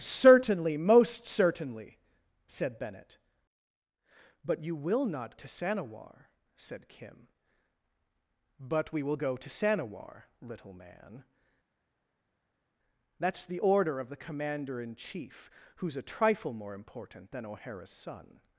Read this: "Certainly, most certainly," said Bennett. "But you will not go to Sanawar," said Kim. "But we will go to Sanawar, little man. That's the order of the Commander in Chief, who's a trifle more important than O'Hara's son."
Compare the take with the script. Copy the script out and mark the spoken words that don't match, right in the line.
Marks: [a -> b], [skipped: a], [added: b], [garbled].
"Certainly, most certainly," said Bennett. "But you will not [skipped: go] to Sanawar," said Kim. "But we will go to Sanawar, little man. That's the order of the Commander in Chief, who's a trifle more important than O'Hara's son."